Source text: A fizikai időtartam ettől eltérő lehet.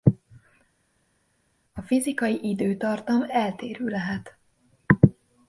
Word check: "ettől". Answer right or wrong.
wrong